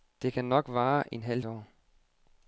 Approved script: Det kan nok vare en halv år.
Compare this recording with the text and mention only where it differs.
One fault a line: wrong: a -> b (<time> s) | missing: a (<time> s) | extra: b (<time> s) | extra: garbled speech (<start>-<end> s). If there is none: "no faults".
no faults